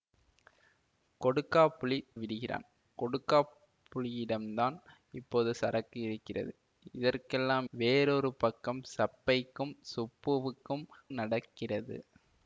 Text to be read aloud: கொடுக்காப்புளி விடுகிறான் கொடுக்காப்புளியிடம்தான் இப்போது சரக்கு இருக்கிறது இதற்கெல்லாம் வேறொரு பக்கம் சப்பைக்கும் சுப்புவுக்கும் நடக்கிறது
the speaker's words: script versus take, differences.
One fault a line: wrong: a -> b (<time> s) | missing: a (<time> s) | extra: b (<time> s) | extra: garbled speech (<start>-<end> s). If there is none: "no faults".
no faults